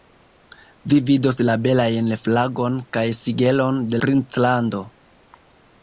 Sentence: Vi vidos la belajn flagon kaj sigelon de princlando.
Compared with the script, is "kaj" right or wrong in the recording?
right